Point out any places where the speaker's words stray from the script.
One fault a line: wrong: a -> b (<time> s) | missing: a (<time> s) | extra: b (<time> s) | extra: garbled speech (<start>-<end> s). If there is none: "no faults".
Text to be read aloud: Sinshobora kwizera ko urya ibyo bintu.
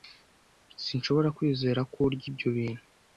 no faults